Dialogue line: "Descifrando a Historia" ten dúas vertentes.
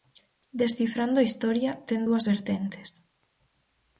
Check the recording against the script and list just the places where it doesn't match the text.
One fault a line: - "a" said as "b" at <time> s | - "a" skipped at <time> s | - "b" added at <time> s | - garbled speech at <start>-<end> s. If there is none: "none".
none